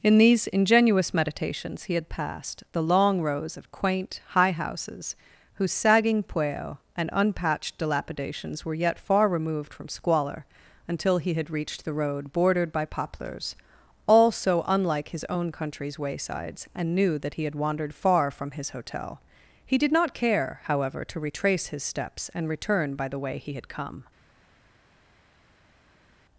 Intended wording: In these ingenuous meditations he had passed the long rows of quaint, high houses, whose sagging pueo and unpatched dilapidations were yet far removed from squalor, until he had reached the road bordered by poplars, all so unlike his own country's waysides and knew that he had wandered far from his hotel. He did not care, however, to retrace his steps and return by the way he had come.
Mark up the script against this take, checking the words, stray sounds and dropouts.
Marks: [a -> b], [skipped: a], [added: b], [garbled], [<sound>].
In these ingenuous meditations he had passed the long rows of quaint, high houses, whose sagging pueo and unpatched dilapidations were yet far removed from squalor, until he had reached the road bordered by poplars, all so unlike his own country's waysides and knew that he had wandered far from his hotel. He did not care, however, to retrace his steps and return by the way he had come.